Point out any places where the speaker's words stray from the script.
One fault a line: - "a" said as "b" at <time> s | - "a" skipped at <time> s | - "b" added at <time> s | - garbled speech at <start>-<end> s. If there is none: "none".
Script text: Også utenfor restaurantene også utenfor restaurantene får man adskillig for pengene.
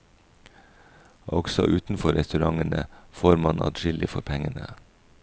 - "også utenfor restaurantene" skipped at 2.8 s